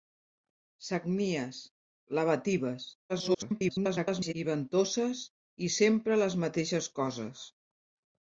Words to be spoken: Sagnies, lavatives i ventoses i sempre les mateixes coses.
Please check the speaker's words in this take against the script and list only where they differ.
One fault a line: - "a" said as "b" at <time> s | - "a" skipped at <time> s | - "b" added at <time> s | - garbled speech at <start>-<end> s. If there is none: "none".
- garbled speech at 3.1-4.3 s